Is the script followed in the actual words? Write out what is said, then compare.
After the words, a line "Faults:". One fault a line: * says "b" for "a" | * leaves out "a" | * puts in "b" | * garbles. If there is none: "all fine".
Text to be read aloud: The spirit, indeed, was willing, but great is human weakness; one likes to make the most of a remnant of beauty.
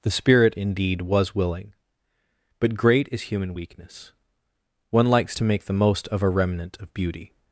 The spirit, indeed, was willing, but great is human weakness; one likes to make the most of a remnant of beauty.
Faults:
all fine